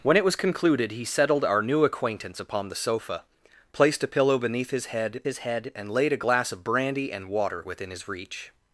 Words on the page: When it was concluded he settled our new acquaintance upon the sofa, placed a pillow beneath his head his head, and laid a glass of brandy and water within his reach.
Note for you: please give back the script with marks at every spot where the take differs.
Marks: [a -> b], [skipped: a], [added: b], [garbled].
When it was concluded he settled our new acquaintance upon the sofa, placed a pillow beneath his head his head, and laid a glass of brandy and water within his reach.